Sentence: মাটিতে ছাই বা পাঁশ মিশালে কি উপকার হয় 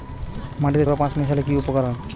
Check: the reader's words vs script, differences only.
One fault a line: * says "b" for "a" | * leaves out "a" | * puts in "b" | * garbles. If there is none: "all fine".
* leaves out "ছাই"